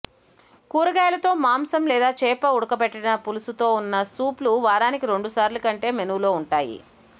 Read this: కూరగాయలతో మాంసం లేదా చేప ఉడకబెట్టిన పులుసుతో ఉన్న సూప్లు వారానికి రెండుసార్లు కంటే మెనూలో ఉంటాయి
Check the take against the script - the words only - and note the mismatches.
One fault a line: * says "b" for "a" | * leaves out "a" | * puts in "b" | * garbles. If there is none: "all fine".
all fine